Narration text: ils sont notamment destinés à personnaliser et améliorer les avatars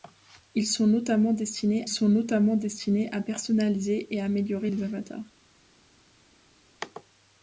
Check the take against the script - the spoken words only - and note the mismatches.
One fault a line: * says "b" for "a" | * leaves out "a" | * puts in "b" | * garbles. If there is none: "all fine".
* puts in "sont notamment destinés"